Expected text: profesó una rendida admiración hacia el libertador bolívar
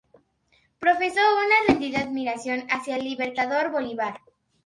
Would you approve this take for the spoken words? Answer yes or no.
yes